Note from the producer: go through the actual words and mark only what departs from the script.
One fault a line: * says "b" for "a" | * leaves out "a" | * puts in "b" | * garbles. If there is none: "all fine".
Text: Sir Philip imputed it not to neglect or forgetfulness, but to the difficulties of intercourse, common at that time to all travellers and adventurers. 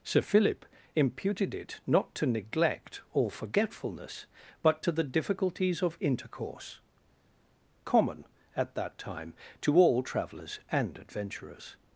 all fine